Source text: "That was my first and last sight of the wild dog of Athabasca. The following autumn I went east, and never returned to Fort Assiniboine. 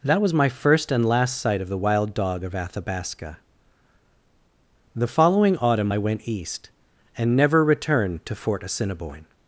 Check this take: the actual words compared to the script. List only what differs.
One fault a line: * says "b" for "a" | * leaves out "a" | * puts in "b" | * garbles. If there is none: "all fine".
all fine